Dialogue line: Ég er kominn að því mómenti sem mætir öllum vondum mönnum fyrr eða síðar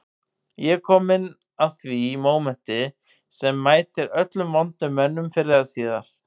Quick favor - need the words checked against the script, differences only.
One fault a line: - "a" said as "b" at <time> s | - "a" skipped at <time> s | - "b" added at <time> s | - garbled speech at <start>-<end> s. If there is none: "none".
none